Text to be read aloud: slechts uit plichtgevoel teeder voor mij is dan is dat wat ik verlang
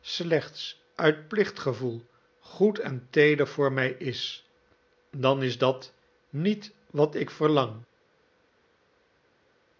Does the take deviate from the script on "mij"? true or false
false